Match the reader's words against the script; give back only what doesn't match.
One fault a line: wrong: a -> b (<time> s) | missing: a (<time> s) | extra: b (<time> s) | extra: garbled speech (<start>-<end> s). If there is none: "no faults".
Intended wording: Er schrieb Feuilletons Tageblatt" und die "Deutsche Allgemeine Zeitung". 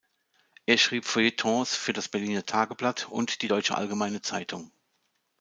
extra: für das Berliner (1.8 s)